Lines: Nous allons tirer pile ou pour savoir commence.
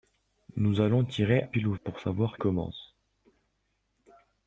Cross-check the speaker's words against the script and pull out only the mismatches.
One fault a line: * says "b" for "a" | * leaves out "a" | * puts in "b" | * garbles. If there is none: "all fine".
all fine